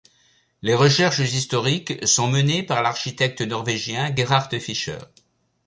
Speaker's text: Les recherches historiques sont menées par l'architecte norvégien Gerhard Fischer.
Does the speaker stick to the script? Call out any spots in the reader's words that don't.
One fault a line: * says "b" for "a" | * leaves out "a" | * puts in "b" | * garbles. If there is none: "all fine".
all fine